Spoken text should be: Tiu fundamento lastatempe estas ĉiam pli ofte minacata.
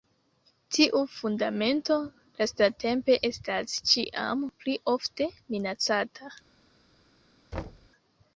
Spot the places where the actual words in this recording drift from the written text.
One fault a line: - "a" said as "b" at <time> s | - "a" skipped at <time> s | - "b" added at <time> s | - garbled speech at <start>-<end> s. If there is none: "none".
none